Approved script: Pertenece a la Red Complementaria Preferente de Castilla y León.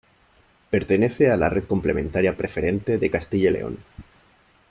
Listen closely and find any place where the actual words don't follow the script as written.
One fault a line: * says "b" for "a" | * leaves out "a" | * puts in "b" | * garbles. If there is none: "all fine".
all fine